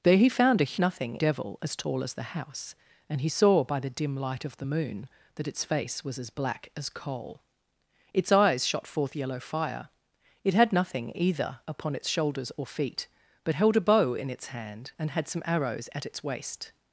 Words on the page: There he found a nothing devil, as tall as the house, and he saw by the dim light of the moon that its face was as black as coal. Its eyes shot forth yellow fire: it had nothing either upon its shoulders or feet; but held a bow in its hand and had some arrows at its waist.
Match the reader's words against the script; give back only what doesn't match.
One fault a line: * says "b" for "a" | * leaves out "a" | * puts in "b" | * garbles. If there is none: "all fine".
all fine